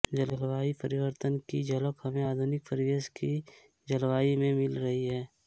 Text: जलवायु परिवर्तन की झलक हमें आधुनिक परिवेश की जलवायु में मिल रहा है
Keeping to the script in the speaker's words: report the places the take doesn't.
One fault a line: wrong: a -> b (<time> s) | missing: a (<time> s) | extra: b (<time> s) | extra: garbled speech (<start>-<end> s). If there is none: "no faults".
wrong: रहा -> रही (4.8 s)